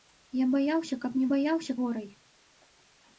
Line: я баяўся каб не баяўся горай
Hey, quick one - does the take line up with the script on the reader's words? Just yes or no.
yes